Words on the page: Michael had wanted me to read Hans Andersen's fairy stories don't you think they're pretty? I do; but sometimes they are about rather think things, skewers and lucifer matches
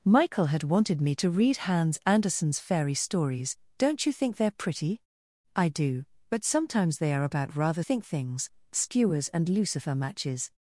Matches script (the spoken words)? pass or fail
pass